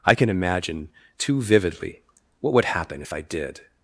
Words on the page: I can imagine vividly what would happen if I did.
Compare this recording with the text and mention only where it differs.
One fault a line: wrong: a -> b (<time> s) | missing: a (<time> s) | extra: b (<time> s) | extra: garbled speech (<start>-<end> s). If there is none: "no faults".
extra: too (1.2 s)